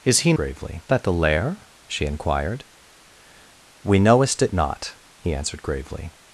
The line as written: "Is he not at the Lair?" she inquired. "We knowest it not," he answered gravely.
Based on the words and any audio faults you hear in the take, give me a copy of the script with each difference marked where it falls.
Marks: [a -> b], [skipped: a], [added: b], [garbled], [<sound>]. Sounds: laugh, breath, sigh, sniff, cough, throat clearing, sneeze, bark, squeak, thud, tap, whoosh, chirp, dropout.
"Is he [not -> gravely] at the Lair?" she inquired. "We knowest it not," he answered gravely.